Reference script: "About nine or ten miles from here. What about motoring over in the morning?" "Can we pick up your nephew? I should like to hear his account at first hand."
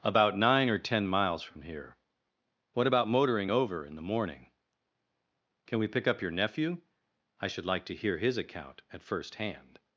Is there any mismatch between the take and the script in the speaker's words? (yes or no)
no